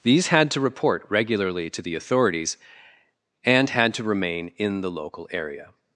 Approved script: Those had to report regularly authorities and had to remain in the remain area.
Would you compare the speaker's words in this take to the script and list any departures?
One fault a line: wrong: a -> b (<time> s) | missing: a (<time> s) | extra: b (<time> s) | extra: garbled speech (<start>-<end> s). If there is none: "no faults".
wrong: Those -> These (0.0 s)
extra: to the (1.7 s)
wrong: remain -> local (4.9 s)